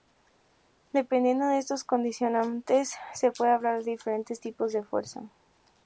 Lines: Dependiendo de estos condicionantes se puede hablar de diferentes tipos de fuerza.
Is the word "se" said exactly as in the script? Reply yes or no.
yes